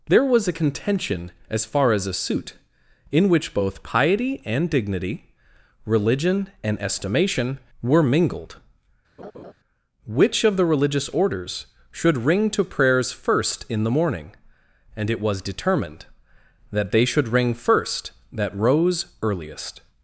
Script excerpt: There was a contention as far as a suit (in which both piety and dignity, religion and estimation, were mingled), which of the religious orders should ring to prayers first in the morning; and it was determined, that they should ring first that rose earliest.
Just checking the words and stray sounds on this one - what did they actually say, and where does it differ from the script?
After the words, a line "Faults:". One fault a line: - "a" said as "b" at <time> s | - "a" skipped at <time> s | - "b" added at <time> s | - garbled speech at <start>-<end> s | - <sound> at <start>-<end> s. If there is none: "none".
There was a contention as far as a suit (in which both piety and dignity, religion and estimation, were mingled), which of the religious orders should ring to prayers first in the morning; and it was determined, that they should ring first that rose earliest.
Faults:
- laugh at 9.2-9.5 s